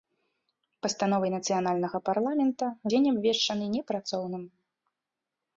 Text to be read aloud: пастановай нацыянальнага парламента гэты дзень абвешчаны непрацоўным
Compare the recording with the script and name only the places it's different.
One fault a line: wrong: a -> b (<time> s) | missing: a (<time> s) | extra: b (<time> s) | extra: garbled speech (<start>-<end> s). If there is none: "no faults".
missing: гэты (2.6 s)